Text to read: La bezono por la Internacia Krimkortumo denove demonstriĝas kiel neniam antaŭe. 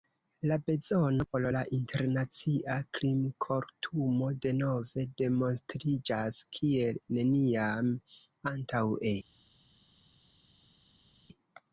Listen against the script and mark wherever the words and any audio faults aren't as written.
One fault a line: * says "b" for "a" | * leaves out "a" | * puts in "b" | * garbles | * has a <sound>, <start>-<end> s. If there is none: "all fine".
all fine